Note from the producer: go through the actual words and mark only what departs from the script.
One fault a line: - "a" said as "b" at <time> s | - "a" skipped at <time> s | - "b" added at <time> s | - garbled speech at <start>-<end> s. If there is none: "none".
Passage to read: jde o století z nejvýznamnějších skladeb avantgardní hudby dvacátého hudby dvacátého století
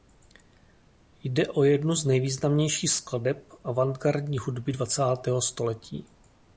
- "století" said as "jednu" at 1.6 s
- "hudby dvacátého" skipped at 5.4 s